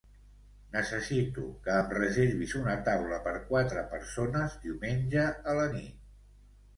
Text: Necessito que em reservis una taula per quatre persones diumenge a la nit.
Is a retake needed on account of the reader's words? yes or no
no